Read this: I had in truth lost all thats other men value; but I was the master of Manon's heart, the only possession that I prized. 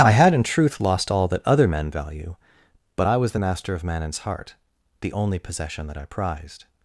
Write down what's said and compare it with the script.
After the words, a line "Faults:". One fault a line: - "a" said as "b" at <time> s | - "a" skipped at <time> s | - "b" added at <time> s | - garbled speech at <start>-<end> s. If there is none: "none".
I had in truth lost all that other men value; but I was the master of Manon's heart, the only possession that I prized.
Faults:
- "thats" said as "that" at 1.3 s